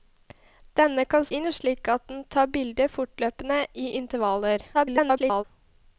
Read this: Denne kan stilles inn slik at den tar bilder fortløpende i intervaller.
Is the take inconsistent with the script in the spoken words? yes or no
yes